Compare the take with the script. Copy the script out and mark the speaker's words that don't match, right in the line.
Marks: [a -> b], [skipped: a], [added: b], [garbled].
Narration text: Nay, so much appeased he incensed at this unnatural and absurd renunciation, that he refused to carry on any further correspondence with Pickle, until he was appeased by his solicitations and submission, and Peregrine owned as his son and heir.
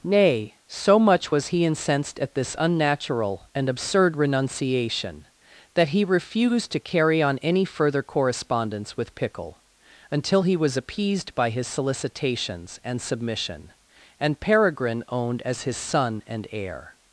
Nay, so much [appeased -> was] he incensed at this unnatural and absurd renunciation, that he refused to carry on any further correspondence with Pickle, until he was appeased by his solicitations and submission, and Peregrine owned as his son and heir.